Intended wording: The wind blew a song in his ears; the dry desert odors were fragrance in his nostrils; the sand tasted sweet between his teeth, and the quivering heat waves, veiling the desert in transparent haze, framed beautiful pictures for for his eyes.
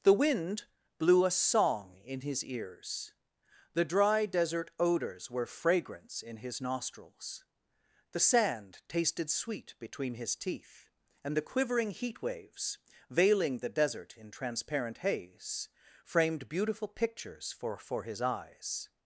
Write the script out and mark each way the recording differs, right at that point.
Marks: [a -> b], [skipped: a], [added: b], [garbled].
The wind blew a song in his ears; the dry desert odors were fragrance in his nostrils; the sand tasted sweet between his teeth, and the quivering heat waves, veiling the desert in transparent haze, framed beautiful pictures for for his eyes.